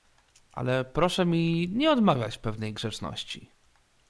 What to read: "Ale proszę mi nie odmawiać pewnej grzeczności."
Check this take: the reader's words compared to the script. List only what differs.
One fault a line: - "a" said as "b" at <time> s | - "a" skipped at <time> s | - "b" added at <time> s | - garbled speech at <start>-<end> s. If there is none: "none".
none